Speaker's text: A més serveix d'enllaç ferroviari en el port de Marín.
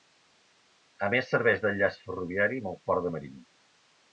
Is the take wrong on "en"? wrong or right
wrong